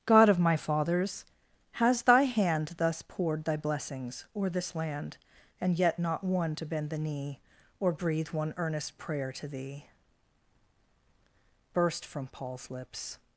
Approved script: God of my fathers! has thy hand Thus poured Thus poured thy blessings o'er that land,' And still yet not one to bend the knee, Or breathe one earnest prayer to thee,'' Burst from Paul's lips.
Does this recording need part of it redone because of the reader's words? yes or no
yes